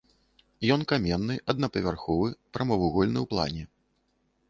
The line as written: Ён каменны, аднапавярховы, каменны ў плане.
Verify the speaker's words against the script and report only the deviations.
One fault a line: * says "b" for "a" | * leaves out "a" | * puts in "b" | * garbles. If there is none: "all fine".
* says "прамавугольны" for "каменны"